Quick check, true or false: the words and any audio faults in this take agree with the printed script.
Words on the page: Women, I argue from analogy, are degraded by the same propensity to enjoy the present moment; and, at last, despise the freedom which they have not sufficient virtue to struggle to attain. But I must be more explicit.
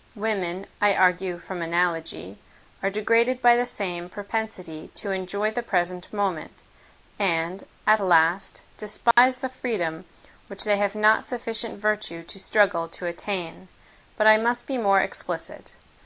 false